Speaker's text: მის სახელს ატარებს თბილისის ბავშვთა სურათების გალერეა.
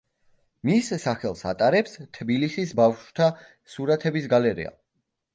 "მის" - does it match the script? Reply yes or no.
yes